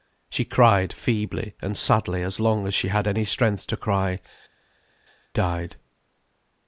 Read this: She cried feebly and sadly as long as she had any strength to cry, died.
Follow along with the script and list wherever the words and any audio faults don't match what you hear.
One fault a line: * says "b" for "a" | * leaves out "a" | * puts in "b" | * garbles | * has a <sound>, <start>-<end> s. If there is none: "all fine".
all fine